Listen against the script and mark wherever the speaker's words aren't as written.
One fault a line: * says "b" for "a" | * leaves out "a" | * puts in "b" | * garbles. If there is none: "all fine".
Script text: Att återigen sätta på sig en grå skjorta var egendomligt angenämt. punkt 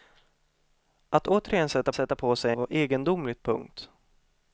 * puts in "sätta"
* leaves out "en grå skjorta"
* leaves out "angenämt"